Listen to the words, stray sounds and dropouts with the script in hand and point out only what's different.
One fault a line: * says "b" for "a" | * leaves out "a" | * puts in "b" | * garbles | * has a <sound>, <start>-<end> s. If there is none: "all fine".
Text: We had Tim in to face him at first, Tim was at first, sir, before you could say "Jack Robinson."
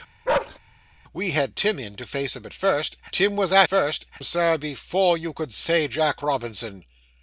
* has a bark, 0.3-0.6 s